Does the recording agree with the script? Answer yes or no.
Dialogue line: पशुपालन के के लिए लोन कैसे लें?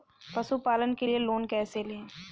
no